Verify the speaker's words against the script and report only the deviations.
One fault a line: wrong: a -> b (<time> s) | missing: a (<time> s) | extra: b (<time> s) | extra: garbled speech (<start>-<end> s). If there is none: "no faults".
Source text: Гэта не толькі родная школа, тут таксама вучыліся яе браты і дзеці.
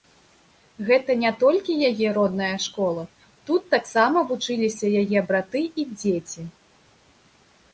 extra: яе (1.9 s)